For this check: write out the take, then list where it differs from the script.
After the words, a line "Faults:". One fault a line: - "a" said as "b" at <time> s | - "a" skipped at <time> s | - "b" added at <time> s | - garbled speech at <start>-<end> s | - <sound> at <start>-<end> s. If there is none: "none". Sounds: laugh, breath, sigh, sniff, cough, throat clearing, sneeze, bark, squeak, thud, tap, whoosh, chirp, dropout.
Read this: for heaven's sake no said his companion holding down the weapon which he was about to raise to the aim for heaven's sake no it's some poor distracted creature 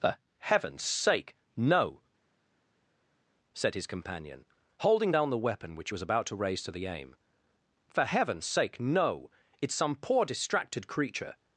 for heaven's sake no said his companion holding down the weapon which he was about to raise to the aim for heaven's sake no it's some poor distracted creature
Faults:
none